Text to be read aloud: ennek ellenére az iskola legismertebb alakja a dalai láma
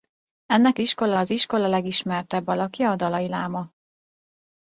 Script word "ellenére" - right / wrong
wrong